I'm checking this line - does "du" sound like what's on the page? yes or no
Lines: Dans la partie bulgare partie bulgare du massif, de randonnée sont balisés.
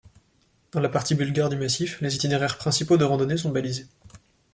no